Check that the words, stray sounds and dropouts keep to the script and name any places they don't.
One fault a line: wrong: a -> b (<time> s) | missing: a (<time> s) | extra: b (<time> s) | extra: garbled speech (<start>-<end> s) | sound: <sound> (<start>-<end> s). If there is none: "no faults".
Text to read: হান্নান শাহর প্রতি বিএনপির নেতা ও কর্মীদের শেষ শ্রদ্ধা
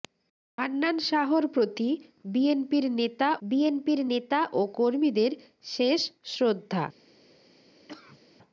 extra: বিএনপির নেতা (3.4 s)
sound: cough (7.9-8.2 s)